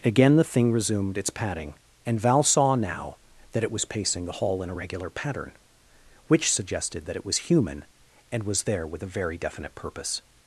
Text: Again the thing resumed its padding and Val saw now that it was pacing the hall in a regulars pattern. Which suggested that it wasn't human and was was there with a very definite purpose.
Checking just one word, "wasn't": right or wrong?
wrong